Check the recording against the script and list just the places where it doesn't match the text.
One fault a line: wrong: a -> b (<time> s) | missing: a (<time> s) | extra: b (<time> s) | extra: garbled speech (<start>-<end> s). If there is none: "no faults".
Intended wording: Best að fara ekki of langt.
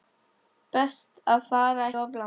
missing: ekki (1.9 s)